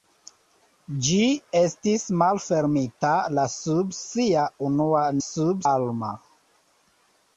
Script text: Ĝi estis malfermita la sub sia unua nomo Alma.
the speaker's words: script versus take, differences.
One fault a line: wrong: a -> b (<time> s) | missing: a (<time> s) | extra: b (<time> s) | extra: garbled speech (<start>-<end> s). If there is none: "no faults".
wrong: nomo -> sub (5.3 s)